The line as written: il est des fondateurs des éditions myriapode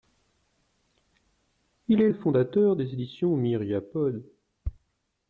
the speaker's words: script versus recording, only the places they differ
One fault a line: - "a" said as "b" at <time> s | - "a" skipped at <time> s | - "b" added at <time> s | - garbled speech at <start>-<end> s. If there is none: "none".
none